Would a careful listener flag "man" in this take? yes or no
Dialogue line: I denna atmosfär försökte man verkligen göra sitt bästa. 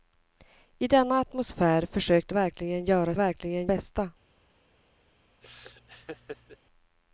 yes